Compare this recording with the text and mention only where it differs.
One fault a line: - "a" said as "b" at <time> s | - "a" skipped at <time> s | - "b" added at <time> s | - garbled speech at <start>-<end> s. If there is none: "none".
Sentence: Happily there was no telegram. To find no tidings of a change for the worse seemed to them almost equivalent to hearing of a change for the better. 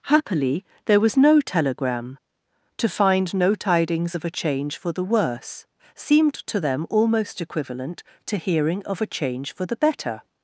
none